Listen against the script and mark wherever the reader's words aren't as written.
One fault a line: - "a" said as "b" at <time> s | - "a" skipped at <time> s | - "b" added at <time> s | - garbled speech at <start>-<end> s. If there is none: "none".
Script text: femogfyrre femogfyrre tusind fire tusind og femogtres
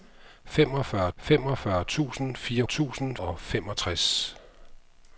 none